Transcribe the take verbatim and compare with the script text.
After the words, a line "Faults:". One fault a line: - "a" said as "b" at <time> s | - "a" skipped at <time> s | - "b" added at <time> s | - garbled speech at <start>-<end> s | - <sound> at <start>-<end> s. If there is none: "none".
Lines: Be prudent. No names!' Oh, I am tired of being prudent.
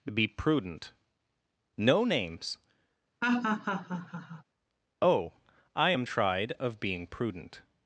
Be prudent. No names!' Oh, I am tried of being prudent.
Faults:
- laugh at 3.2-4.4 s
- "tired" said as "tried" at 6.0 s